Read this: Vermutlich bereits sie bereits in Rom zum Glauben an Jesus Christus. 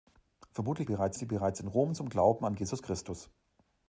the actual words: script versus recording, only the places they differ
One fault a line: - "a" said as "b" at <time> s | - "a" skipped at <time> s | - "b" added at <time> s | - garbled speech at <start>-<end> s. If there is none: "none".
none